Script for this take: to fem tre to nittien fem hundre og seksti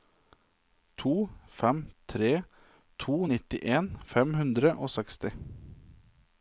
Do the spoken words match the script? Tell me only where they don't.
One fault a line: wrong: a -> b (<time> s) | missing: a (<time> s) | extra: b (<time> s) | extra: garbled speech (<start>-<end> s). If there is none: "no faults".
no faults